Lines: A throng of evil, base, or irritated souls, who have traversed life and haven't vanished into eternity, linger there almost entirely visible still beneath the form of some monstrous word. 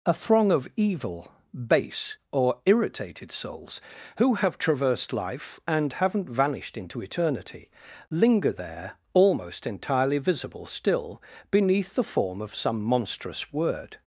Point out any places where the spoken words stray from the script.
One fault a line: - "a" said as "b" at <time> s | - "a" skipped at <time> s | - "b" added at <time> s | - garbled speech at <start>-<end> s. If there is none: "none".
none